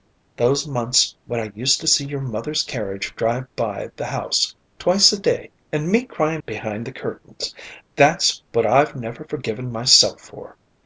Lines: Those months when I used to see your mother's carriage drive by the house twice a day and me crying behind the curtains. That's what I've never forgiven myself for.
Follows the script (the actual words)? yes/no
yes